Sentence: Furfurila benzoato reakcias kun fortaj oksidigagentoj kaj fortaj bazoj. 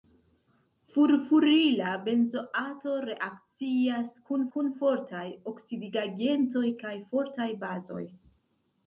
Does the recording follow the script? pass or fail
fail